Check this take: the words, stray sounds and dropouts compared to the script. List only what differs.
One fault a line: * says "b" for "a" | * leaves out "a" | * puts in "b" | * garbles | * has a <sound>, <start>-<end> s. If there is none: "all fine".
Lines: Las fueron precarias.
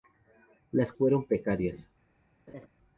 * has a laugh, 2.5-2.7 s